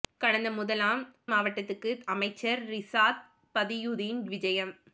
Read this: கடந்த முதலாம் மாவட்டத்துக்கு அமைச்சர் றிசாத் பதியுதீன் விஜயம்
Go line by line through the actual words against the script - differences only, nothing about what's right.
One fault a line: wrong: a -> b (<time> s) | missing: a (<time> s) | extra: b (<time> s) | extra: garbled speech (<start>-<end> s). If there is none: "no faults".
no faults